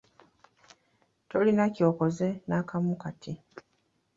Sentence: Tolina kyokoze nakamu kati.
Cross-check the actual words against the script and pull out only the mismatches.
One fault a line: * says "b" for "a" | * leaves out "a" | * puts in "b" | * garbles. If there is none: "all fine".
all fine